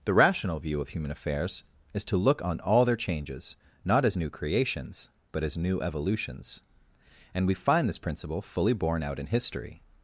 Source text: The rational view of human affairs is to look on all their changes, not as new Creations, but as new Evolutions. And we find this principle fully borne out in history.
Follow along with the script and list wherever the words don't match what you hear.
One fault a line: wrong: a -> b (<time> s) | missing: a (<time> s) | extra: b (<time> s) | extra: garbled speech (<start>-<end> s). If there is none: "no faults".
no faults